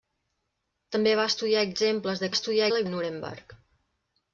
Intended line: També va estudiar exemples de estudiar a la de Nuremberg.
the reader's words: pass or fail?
pass